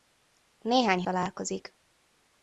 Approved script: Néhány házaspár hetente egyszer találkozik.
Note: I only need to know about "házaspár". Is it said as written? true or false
false